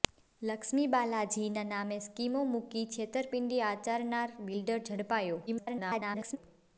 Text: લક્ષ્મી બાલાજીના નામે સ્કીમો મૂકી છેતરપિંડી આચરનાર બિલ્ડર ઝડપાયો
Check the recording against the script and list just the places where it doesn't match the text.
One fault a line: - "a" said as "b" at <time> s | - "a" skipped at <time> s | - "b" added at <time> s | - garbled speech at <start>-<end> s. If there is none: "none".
- garbled speech at 5.5-6.4 s